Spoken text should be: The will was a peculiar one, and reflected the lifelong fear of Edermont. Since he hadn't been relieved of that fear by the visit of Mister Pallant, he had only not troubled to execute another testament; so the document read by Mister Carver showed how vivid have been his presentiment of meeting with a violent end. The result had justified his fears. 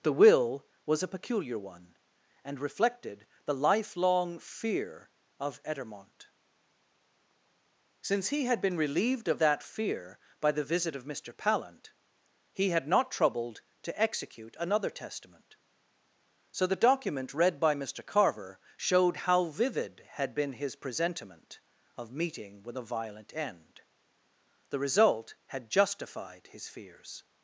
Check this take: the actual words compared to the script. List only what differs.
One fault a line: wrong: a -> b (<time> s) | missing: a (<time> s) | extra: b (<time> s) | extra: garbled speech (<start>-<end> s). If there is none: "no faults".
wrong: hadn't -> had (8.4 s)
missing: only (12.9 s)
wrong: have -> had (20.1 s)